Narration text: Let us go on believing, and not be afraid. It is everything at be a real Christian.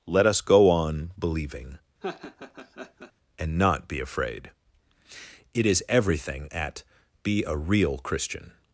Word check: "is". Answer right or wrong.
right